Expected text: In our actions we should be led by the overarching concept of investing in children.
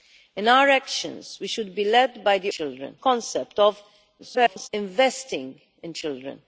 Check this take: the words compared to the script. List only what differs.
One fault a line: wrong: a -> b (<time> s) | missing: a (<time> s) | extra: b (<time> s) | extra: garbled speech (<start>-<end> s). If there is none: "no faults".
wrong: overarching -> children (2.5 s)
extra: garbled speech (4.2-4.7 s)